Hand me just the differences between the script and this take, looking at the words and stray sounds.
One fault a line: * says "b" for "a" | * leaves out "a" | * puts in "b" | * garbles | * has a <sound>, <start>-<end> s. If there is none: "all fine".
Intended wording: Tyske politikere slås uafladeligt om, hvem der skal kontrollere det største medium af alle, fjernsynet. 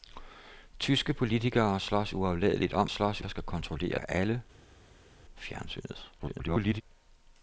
* says "slås" for "hvem"
* leaves out "det største medium"
* garbles